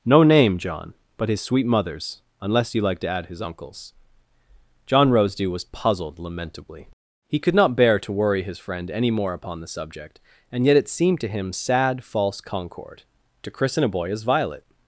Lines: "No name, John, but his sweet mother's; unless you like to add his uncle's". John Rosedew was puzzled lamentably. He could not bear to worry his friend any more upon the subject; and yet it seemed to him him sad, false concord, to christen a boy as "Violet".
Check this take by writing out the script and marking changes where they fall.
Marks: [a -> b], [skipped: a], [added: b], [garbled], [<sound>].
"No name, John, but his sweet mother's; unless you like to add his uncle's". John Rosedew was puzzled lamentably. He could not bear to worry his friend any more upon the subject; and yet it seemed to him [skipped: him] sad, false concord, to christen a boy as "Violet".